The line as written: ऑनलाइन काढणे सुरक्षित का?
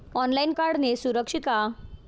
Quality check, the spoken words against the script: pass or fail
pass